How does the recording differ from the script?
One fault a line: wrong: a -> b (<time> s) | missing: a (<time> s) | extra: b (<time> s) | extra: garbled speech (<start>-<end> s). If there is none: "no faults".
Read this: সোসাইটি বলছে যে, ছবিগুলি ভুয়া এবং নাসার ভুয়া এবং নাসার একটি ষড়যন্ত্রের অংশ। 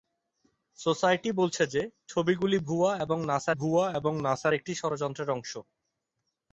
no faults